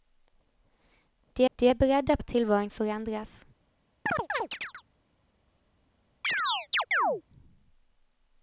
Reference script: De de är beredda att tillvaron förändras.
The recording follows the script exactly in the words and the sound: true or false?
false